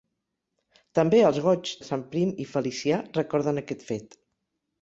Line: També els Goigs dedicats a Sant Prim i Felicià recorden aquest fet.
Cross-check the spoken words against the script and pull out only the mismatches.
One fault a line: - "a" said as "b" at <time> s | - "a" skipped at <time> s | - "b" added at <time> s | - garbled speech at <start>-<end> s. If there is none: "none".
- "dedicats" skipped at 1.7 s